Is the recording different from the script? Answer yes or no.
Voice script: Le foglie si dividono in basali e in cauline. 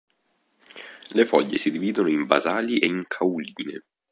no